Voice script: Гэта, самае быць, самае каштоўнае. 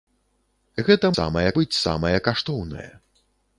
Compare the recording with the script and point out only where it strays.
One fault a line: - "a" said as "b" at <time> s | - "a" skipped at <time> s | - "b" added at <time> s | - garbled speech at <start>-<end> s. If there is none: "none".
none